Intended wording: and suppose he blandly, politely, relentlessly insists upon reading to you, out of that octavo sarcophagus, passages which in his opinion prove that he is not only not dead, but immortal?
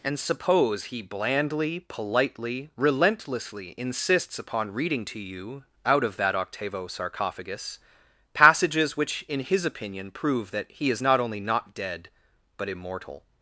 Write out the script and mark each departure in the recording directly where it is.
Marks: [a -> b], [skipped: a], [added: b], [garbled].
and suppose he blandly, politely, relentlessly insists upon reading to you, out of that octavo sarcophagus, passages which in his opinion prove that he is not only not dead, but immortal?